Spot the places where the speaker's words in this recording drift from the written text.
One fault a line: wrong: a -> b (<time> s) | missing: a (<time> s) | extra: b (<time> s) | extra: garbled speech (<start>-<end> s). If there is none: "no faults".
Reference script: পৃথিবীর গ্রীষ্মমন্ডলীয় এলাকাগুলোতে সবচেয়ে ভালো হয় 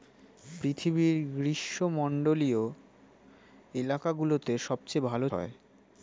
no faults